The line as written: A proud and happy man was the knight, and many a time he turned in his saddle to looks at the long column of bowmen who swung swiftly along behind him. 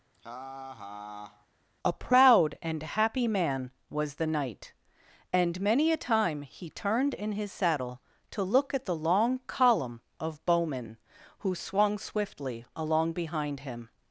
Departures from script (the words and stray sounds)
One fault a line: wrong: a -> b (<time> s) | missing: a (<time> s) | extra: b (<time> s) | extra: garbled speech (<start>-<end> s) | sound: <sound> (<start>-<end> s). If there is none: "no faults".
sound: laugh (0.1-1.5 s)
wrong: looks -> look (8.4 s)